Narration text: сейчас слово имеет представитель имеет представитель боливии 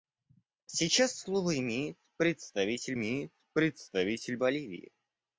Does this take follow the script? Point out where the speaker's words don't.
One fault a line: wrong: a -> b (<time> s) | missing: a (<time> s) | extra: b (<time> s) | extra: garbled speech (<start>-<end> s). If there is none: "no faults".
no faults